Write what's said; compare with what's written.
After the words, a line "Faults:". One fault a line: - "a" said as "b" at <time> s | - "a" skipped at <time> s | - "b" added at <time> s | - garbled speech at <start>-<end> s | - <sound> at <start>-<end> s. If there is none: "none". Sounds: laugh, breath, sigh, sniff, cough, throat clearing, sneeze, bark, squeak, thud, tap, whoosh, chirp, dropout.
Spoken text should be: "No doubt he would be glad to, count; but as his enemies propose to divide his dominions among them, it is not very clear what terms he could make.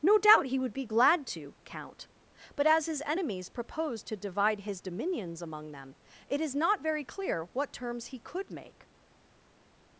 "No doubt he would be glad to, count; but as his enemies propose to divide his dominions among them, it is not very clear what terms he could make.
Faults:
none